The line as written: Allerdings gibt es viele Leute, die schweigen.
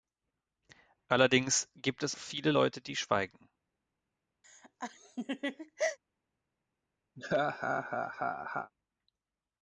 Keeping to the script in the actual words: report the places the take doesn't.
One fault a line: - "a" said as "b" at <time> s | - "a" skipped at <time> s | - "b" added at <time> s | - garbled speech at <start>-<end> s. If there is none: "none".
none